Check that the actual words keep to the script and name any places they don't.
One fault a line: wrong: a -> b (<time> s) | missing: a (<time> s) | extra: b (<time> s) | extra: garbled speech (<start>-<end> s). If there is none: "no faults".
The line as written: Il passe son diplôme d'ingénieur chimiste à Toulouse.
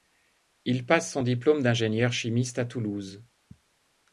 no faults